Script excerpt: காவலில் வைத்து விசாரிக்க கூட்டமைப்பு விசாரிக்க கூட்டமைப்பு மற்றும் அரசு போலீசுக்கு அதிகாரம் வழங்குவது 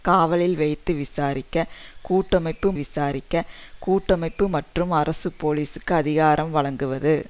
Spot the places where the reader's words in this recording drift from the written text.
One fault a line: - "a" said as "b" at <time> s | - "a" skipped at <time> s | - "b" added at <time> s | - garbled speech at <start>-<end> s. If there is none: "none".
none